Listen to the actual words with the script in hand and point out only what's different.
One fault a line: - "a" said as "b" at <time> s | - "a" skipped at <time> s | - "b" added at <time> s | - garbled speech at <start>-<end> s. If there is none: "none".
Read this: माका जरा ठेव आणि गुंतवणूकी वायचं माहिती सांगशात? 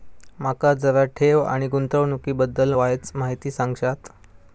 - "बद्दल" added at 2.3 s